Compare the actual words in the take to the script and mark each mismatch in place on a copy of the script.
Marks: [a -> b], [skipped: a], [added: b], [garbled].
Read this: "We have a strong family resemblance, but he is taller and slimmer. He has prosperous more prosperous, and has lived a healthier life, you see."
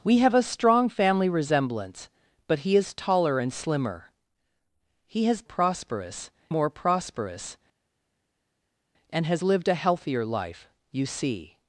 "We have a strong family resemblance, but he is taller and slimmer. He has prosperous more prosperous, and has lived a healthier life, you see."